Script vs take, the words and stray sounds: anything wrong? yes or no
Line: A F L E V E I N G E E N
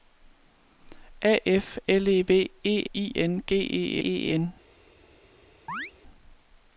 yes